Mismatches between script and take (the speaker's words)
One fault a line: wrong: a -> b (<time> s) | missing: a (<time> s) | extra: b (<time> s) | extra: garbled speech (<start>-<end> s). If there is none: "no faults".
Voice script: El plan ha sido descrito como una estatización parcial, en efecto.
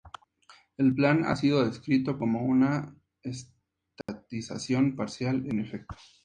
no faults